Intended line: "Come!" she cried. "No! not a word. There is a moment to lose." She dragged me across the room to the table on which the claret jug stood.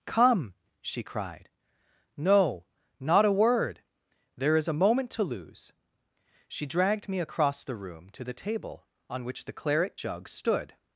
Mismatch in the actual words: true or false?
false